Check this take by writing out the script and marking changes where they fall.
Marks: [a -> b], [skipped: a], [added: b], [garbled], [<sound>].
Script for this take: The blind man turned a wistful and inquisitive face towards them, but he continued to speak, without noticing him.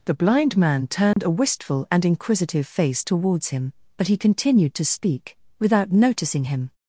The blind man turned [dropout] a wistful and inquisitive face towards [them, -> him] but he continued to speak, without noticing him.